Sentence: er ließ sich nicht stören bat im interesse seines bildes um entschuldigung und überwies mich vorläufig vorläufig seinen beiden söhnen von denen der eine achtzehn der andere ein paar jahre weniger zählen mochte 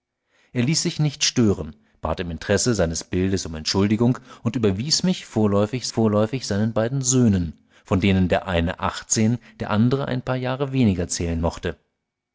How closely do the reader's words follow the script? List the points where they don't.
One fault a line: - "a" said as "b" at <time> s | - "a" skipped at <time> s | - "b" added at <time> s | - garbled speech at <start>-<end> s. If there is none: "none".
none